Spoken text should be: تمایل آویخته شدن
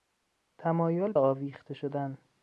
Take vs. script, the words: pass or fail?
pass